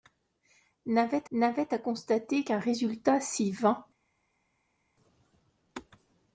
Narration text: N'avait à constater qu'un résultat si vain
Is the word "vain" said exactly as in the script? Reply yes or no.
yes